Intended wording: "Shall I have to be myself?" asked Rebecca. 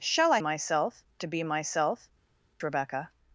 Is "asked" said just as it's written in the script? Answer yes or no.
no